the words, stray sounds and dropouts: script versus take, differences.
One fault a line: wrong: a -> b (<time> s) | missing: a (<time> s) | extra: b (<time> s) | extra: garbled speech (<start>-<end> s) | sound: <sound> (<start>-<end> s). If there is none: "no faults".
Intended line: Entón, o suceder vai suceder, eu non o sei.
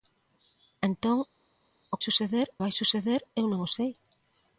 no faults